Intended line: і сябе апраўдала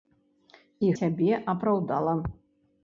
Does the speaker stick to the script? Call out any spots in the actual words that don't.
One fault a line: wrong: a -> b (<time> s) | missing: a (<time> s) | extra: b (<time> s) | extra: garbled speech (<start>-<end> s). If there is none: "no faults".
no faults